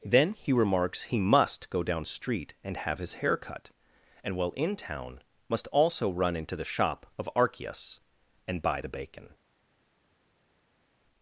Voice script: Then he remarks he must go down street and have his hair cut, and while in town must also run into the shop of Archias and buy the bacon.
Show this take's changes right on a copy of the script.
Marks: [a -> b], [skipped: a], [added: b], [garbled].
Then he remarks he must go down street and have his hair cut, and while in town must also run into the shop of Archias and buy the bacon.